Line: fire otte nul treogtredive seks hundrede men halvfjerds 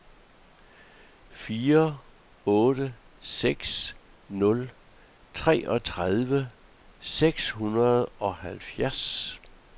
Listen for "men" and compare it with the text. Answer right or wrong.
wrong